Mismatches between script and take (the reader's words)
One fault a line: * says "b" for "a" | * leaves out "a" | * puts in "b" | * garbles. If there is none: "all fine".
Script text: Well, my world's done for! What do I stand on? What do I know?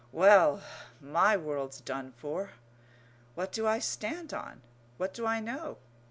all fine